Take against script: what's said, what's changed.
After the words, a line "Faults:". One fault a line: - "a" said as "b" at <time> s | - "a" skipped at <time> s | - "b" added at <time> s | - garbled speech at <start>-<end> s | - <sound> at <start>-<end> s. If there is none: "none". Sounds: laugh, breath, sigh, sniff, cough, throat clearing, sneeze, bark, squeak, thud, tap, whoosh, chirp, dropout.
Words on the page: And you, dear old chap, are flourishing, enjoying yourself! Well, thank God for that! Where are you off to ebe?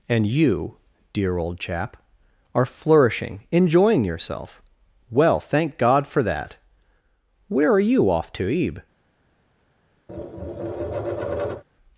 And you, dear old chap, are flourishing, enjoying yourself! Well, thank God for that! Where are you off to ebe?
Faults:
- tap at 10.1-11.6 s